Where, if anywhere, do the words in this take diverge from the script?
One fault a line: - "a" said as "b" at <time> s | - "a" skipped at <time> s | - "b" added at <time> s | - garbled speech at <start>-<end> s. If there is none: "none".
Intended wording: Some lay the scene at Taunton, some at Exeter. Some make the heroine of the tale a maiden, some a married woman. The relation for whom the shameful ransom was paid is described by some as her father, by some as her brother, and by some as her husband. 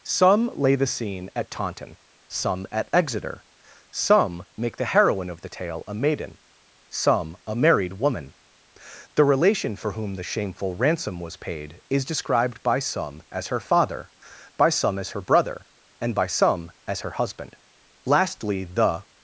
- "Lastly the" added at 18.1 s